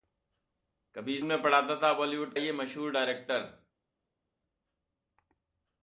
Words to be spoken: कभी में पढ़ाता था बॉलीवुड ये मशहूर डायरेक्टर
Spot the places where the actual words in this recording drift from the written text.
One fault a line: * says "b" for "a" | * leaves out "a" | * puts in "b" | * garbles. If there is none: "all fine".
all fine